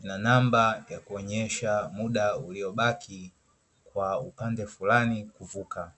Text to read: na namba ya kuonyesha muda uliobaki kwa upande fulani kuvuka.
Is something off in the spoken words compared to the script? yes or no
no